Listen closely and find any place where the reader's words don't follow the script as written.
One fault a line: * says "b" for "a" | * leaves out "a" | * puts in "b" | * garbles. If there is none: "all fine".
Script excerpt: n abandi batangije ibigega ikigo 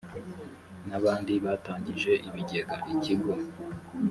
all fine